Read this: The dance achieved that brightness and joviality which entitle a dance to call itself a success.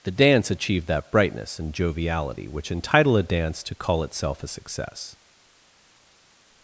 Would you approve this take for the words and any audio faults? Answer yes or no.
yes